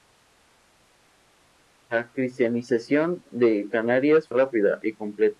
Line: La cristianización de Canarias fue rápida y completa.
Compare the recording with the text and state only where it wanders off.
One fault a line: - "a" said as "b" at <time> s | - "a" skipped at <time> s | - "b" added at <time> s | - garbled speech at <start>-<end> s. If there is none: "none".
- "fue" skipped at 4.3 s